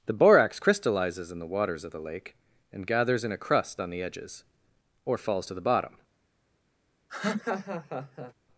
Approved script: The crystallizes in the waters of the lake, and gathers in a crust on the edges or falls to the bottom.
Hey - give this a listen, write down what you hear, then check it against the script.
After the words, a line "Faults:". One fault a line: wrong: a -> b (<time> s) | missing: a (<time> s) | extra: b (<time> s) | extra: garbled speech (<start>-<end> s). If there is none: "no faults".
The borax crystallizes in the waters of the lake, and gathers in a crust on the edges or falls to the bottom.
Faults:
extra: borax (0.1 s)